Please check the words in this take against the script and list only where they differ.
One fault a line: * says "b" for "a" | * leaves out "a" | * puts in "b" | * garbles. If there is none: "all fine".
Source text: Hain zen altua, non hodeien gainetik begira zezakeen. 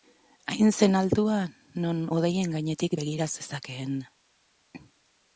all fine